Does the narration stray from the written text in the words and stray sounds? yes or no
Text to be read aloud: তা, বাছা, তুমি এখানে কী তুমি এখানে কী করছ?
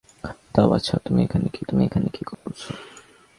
yes